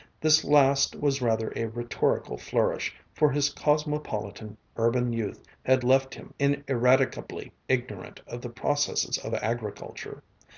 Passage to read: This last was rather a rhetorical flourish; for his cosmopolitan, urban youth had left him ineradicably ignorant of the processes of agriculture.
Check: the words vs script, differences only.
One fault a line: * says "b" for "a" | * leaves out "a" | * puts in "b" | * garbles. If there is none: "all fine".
all fine